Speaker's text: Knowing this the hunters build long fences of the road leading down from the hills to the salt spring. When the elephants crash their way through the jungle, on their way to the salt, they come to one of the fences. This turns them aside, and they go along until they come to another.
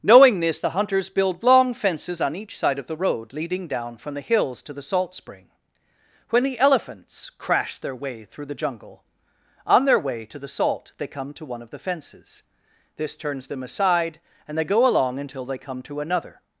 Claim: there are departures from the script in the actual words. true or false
true